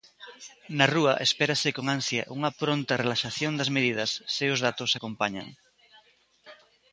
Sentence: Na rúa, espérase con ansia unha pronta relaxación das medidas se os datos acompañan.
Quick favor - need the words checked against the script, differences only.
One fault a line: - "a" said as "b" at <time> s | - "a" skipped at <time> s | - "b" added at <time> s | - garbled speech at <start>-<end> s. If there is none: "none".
none